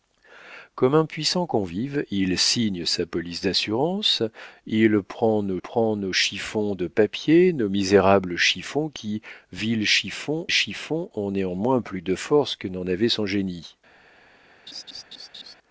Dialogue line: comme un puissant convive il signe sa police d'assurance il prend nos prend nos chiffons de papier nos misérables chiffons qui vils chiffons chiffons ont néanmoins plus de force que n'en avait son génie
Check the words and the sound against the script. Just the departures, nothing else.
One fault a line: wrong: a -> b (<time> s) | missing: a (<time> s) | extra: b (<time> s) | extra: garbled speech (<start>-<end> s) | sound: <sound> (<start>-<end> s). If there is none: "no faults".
sound: laugh (14.7-15.6 s)